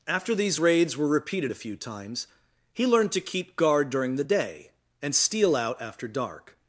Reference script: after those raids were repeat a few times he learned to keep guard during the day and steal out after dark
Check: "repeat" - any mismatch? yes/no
yes